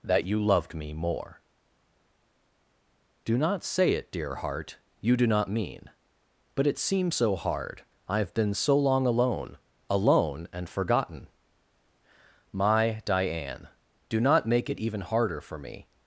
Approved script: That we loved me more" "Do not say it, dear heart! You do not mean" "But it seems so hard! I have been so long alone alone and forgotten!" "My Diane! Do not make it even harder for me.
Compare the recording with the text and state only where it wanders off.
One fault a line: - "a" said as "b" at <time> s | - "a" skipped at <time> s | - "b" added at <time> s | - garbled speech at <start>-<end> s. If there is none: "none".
- "we" said as "you" at 0.2 s